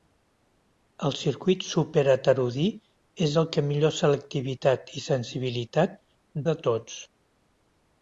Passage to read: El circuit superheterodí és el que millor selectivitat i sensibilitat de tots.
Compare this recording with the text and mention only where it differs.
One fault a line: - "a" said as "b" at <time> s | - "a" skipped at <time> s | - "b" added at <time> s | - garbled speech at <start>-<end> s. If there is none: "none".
none